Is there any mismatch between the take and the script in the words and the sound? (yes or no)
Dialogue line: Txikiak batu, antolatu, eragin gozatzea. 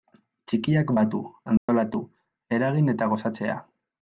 yes